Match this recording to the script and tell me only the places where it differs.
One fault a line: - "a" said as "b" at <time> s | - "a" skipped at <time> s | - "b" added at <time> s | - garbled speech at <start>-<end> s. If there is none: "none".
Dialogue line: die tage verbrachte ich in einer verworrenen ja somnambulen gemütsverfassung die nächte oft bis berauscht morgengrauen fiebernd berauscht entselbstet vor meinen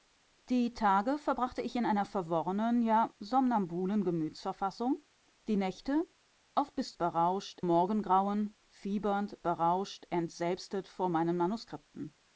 none